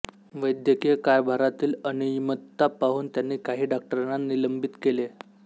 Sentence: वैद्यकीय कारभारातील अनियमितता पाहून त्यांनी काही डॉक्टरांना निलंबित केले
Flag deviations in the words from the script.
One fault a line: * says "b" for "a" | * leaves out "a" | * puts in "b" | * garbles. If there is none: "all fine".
all fine